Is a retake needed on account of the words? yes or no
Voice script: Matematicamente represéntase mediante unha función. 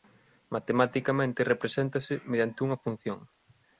no